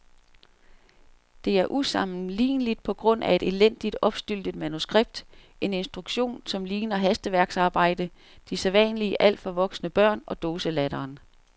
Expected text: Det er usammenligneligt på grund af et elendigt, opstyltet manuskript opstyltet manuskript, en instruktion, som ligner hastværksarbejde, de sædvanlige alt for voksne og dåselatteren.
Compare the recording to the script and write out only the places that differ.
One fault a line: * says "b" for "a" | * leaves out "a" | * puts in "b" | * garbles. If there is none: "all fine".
* leaves out "opstyltet manuskript"
* puts in "børn"